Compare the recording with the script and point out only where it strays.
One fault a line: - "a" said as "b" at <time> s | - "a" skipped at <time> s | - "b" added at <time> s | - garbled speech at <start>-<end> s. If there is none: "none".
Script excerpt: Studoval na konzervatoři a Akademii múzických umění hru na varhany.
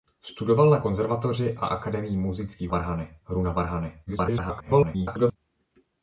- "umění" said as "varhany" at 2.7 s
- garbled speech at 4.1-5.4 s